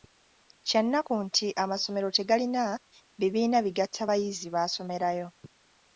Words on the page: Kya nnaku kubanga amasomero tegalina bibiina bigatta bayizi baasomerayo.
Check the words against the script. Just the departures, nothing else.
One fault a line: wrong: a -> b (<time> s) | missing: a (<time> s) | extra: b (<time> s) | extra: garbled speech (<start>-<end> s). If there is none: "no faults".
wrong: kubanga -> nti (1.2 s)